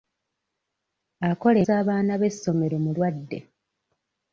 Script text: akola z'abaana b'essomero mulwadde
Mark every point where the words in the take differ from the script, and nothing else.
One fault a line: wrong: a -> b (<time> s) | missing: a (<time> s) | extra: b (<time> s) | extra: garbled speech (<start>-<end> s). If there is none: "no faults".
no faults